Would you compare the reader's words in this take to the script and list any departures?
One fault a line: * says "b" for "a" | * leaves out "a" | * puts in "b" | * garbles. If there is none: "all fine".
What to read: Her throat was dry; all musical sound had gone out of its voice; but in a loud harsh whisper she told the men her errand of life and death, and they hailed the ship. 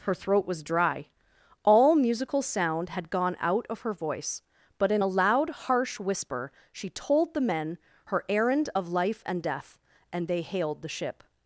* says "her" for "its"